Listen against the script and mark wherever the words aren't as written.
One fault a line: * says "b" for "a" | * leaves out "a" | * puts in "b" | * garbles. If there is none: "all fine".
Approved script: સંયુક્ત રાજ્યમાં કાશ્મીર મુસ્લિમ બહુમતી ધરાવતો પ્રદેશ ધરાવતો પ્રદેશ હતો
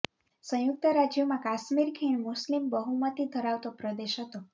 * puts in "ખીણ"
* leaves out "ધરાવતો પ્રદેશ"